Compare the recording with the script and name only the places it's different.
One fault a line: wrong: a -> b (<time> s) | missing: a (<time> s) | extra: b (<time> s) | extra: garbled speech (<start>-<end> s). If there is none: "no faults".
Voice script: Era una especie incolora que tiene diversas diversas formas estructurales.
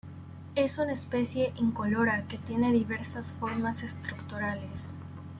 wrong: Era -> Es (0.6 s)
missing: diversas (3.3 s)